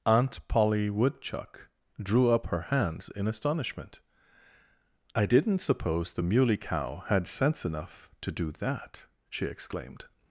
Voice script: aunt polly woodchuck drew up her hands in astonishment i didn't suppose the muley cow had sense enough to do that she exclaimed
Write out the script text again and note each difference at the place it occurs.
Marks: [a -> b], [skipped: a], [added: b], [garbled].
aunt polly woodchuck drew up her hands in astonishment i didn't suppose the muley cow had sense enough to do that she exclaimed